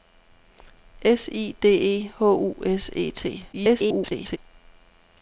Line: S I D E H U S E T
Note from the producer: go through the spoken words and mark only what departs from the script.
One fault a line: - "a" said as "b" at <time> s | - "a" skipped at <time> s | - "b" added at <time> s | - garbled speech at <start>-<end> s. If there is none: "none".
- garbled speech at 3.5-4.4 s